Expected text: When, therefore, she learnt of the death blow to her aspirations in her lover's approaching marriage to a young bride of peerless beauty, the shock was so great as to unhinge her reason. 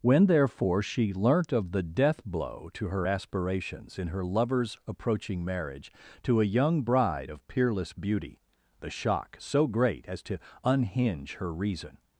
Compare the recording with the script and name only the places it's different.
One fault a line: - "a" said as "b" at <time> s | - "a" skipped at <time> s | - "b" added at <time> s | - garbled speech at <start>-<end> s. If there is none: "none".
- "was" skipped at 9.4 s